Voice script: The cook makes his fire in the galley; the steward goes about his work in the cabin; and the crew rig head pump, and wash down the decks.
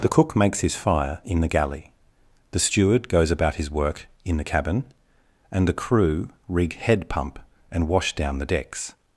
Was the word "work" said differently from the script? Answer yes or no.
no